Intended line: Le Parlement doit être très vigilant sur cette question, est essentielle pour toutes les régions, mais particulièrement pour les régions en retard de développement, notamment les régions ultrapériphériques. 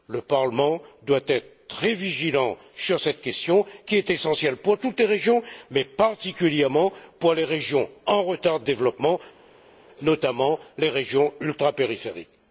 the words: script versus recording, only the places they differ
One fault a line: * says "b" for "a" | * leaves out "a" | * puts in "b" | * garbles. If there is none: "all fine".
* puts in "qui"